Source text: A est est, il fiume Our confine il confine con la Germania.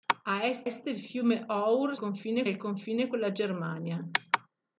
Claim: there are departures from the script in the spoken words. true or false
false